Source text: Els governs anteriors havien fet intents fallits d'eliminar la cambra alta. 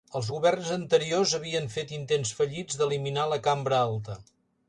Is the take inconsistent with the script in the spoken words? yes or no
no